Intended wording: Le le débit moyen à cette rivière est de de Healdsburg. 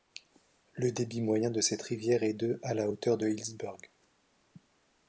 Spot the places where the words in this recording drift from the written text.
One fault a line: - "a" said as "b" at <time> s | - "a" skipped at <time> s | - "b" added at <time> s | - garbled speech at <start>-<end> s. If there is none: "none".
- "le" skipped at 0.9 s
- "à" said as "de" at 1.5 s
- "à la hauteur" added at 2.6 s